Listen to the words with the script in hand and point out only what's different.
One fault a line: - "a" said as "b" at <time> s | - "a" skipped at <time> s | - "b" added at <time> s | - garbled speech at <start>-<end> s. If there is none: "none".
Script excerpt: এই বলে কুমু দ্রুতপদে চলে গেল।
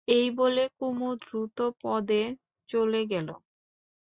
none